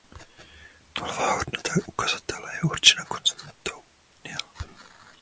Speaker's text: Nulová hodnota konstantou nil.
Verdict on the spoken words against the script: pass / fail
fail